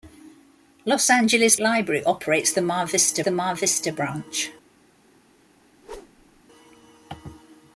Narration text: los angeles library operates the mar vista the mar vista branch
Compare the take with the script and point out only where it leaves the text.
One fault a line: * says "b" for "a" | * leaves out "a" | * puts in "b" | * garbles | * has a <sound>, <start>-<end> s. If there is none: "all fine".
* has a whoosh, 5.8-6.4 s